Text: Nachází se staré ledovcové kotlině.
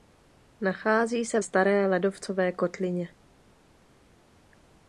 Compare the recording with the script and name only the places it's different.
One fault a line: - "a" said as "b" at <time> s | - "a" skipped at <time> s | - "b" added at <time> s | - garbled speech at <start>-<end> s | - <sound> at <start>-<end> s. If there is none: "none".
none